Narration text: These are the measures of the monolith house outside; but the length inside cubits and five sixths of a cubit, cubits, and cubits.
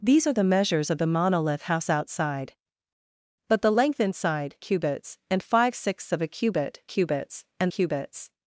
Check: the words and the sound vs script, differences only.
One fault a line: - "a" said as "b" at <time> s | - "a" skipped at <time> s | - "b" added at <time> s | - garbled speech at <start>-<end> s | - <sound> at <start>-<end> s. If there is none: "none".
none